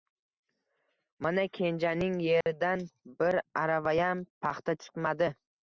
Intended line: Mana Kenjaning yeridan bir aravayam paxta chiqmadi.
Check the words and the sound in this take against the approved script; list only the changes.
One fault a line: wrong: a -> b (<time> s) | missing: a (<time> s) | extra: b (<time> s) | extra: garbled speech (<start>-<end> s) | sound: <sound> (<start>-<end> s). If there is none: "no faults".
sound: dropout (2.4-2.5 s)